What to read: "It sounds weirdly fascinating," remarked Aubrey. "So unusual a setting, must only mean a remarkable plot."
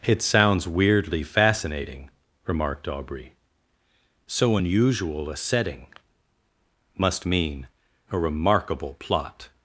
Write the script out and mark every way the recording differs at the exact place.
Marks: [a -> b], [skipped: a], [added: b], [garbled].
"It sounds weirdly fascinating," remarked Aubrey. "So unusual a setting, must [skipped: only] mean a remarkable plot."